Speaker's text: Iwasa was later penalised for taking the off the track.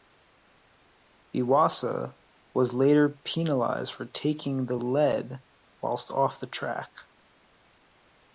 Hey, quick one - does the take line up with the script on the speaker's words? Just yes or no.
no